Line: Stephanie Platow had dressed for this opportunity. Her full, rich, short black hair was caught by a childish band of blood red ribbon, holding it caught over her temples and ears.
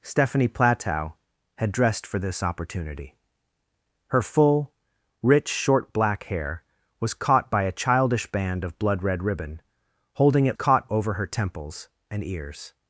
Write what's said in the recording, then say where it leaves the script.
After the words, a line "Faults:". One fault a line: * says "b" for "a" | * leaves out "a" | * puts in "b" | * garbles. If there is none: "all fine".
Stephanie Platow had dressed for this opportunity. Her full, rich, short black hair was caught by a childish band of blood red ribbon, holding it caught over her temples and ears.
Faults:
all fine